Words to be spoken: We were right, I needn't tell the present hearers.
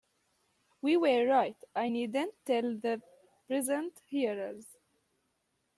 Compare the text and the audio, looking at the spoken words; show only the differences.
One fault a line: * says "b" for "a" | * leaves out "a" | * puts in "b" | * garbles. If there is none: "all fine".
all fine